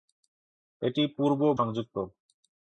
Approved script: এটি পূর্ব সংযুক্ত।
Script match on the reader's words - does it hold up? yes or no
yes